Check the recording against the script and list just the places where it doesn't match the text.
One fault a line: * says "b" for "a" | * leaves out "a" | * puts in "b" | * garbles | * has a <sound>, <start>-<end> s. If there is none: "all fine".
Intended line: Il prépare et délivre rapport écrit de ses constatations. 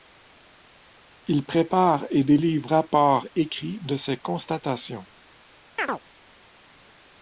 * has a chirp, 5.8-6.0 s